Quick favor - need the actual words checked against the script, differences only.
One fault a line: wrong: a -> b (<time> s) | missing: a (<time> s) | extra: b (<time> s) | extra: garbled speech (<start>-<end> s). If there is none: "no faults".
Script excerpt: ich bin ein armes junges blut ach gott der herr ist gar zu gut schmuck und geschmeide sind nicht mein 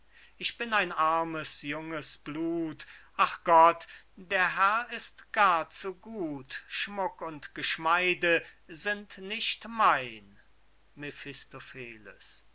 no faults